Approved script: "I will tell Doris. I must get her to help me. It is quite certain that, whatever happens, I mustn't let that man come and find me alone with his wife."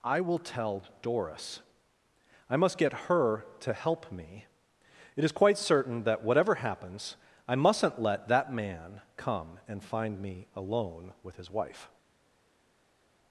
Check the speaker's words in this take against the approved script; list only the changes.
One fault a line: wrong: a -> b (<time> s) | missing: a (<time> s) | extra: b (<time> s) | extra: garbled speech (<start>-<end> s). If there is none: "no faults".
no faults